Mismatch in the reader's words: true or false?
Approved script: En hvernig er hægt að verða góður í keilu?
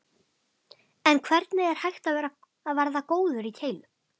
false